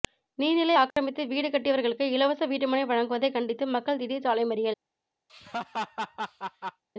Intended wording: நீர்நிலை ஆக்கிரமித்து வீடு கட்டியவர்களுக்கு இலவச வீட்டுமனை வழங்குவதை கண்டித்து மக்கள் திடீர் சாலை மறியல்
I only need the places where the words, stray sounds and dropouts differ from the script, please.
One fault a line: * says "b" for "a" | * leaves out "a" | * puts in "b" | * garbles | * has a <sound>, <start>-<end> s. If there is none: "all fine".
* has a dropout, 0.9-1.0 s
* has a laugh, 5.3-6.8 s